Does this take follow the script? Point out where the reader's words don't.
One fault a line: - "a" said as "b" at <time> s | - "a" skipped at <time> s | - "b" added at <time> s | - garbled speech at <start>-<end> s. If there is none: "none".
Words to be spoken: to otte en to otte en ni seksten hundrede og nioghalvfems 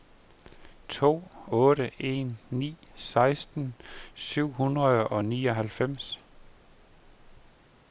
- "to otte en" skipped at 2.4 s
- "syv" added at 4.1 s